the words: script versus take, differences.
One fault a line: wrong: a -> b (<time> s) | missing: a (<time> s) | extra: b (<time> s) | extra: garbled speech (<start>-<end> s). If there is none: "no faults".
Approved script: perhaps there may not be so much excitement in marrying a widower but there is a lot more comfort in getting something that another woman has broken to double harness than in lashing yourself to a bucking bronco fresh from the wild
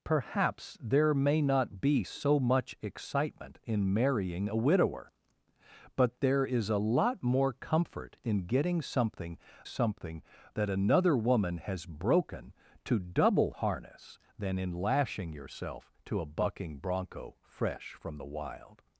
extra: something (9.6 s)